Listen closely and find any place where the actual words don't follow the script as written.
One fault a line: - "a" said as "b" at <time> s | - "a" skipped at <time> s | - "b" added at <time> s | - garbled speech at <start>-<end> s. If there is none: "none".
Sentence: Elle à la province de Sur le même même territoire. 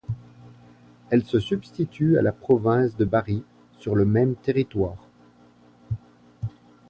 - "se substitue" added at 1.2 s
- "Bari" added at 3.0 s
- "même" skipped at 4.4 s